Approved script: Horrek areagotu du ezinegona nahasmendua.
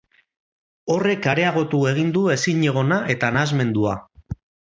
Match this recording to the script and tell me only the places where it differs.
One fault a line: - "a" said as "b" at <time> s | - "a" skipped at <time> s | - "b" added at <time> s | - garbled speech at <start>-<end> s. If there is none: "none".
- "egin" added at 1.9 s
- "eta" added at 3.2 s